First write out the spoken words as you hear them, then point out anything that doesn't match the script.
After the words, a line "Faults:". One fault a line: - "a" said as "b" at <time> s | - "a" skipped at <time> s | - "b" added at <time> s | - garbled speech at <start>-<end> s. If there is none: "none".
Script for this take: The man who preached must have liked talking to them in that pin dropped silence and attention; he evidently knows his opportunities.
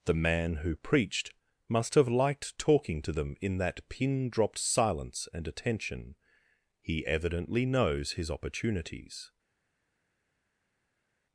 The man who preached must have liked talking to them in that pin dropped silence and attention; he evidently knows his opportunities.
Faults:
none